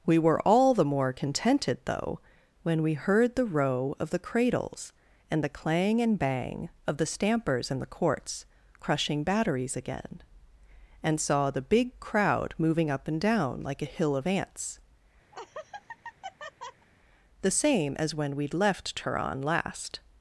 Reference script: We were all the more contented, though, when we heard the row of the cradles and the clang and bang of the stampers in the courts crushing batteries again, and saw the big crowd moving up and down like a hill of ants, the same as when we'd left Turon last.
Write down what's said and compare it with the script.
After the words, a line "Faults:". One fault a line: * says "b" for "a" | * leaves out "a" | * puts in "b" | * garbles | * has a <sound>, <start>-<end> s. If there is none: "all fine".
We were all the more contented, though, when we heard the row of the cradles and the clang and bang of the stampers in the courts crushing batteries again, and saw the big crowd moving up and down like a hill of ants, the same as when we'd left Turon last.
Faults:
* has a laugh, 15.3-16.9 s